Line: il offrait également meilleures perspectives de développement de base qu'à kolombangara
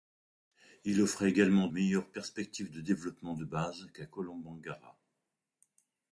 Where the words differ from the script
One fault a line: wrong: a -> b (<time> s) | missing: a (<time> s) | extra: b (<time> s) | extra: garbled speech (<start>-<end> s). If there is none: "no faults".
no faults